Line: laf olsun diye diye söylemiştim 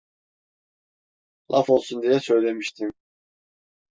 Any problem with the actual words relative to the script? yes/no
yes